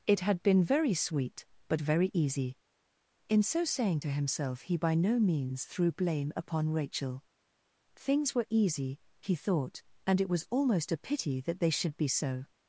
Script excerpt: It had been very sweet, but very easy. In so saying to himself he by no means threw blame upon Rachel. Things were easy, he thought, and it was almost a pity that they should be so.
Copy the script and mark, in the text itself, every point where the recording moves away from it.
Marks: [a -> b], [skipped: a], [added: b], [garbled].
It had been very sweet, but very easy. In so saying to himself he by no means threw blame upon Rachel. Things were easy, he thought, and it was almost a pity that they should be so.